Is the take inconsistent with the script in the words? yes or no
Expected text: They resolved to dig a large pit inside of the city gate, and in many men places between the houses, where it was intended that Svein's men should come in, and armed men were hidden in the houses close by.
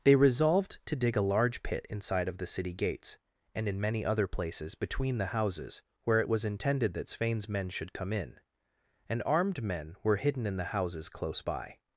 yes